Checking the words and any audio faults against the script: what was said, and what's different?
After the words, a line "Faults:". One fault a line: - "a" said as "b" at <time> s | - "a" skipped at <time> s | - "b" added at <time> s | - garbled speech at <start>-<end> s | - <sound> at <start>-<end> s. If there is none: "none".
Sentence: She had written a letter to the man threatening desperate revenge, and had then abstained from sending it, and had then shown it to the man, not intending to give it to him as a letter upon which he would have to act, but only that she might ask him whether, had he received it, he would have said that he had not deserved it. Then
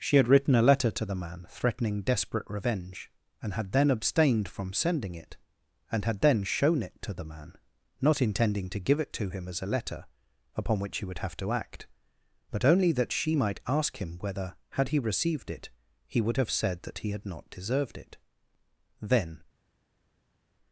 She had written a letter to the man threatening desperate revenge, and had then abstained from sending it, and had then shown it to the man, not intending to give it to him as a letter upon which he would have to act, but only that she might ask him whether, had he received it, he would have said that he had not deserved it. Then
Faults:
none